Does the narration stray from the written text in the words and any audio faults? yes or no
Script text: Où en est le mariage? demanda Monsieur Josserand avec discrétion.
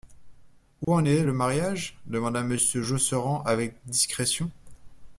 yes